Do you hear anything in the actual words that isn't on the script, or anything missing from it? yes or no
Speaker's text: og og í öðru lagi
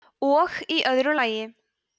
yes